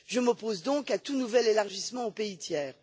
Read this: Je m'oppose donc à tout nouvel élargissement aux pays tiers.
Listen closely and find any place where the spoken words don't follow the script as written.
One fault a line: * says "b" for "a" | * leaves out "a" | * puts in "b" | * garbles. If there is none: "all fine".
all fine